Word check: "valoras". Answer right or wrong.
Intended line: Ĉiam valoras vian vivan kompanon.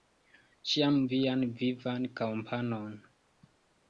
wrong